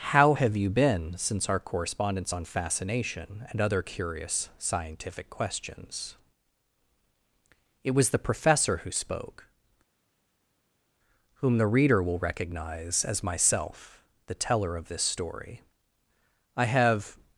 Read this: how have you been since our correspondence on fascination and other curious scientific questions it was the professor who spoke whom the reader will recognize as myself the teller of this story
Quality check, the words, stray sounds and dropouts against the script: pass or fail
fail